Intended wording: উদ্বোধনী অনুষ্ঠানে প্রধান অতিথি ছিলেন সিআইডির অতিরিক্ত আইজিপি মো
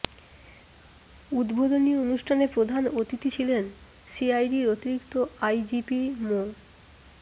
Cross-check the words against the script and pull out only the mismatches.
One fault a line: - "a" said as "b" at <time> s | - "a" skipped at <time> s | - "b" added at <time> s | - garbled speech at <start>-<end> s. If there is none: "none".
none